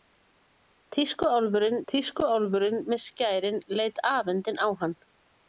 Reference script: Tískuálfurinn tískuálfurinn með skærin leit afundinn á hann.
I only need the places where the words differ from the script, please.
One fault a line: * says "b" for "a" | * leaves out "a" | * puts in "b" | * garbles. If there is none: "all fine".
all fine